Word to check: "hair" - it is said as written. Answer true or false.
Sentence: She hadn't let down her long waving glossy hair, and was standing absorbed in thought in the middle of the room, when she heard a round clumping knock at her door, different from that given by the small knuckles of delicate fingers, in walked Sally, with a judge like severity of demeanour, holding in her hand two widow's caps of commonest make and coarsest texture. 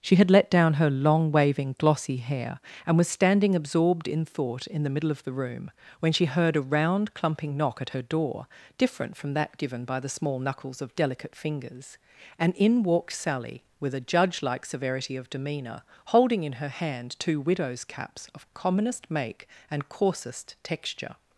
true